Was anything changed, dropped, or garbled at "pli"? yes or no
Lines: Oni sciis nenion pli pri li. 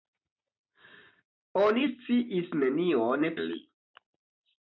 yes